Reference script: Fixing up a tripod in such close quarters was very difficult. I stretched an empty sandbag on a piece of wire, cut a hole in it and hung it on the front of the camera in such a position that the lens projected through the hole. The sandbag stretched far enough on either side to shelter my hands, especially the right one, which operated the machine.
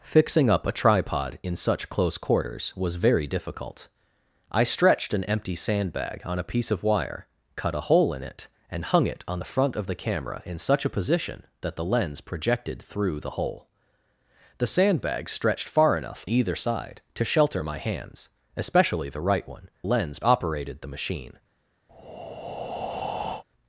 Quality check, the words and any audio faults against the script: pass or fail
fail